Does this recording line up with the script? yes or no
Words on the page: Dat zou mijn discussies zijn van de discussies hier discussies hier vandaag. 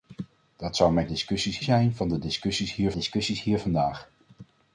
yes